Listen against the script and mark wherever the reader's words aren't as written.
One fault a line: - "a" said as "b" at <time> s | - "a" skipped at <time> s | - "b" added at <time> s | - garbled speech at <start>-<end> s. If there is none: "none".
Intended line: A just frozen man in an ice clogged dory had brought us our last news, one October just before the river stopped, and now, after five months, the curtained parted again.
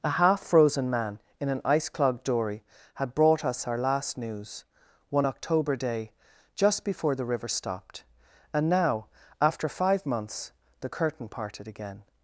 - "just" said as "half" at 0.1 s
- "day" added at 5.8 s
- "curtained" said as "curtain" at 10.9 s